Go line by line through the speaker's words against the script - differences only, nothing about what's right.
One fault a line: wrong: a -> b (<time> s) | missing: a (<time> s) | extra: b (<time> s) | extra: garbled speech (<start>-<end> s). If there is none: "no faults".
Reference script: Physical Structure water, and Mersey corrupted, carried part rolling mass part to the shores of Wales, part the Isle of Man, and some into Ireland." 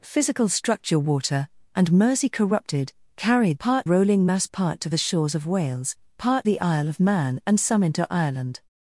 no faults